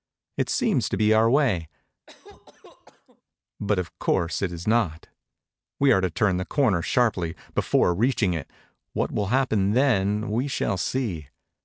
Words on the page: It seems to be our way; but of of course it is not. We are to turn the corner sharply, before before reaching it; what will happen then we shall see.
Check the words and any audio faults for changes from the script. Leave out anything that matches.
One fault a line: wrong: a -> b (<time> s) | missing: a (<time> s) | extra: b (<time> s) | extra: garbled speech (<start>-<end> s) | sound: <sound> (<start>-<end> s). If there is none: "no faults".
sound: cough (2.1-3.2 s)
missing: of (3.9 s)
missing: before (7.9 s)